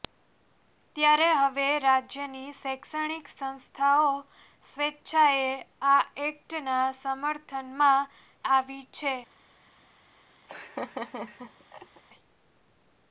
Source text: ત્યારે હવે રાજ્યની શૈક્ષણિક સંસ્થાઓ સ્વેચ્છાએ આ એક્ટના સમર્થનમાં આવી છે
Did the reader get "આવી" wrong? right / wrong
right